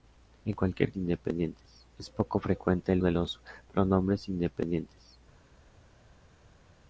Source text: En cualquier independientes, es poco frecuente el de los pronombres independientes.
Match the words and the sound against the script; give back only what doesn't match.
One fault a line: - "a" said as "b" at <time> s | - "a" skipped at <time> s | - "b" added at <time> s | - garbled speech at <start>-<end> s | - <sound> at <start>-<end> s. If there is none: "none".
none